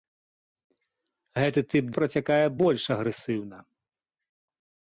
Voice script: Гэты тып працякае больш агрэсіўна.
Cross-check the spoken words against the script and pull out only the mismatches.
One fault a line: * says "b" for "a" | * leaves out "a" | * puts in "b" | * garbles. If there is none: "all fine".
all fine